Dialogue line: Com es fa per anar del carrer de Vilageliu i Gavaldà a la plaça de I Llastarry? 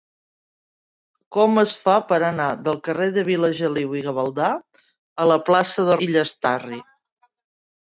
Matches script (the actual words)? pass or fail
pass